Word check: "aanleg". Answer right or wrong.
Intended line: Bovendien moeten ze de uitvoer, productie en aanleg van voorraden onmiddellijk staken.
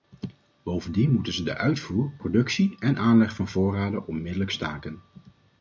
right